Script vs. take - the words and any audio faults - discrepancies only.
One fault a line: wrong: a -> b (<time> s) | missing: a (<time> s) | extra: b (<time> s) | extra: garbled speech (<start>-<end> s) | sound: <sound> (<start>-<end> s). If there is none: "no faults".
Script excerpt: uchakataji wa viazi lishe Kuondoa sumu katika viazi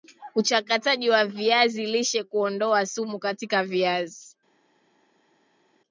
no faults